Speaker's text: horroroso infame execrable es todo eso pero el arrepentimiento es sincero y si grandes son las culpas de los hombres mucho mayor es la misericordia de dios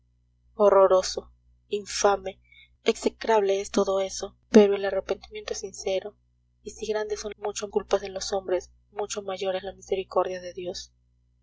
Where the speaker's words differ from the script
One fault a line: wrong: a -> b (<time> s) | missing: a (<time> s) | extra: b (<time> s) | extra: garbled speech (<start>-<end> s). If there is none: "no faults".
wrong: las -> mucho (7.4 s)